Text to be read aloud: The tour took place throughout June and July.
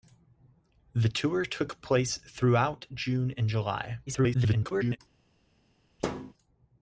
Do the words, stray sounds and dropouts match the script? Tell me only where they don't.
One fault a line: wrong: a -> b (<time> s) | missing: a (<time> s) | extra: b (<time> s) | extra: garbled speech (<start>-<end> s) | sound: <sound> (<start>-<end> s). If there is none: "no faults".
extra: garbled speech (4.1-5.0 s)
sound: thud (6.0-6.3 s)